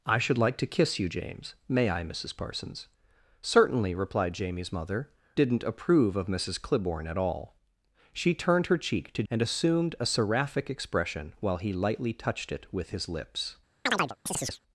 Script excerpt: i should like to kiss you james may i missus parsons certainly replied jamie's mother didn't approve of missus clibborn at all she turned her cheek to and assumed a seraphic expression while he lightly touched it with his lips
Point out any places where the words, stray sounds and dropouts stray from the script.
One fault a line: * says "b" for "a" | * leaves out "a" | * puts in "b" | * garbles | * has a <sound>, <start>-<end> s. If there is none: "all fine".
* has a chirp, 13.9-14.6 s